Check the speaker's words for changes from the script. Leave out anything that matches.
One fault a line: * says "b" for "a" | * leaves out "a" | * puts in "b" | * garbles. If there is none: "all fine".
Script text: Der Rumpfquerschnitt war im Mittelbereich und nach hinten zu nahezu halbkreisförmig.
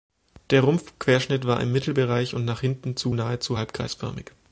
all fine